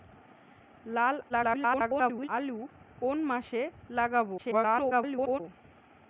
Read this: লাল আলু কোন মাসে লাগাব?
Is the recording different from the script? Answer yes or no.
yes